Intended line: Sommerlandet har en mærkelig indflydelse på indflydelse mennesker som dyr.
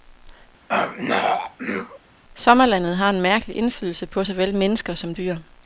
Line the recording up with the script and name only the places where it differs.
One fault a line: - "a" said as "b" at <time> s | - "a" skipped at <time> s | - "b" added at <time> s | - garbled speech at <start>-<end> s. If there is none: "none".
- "indflydelse" said as "såvel" at 4.2 s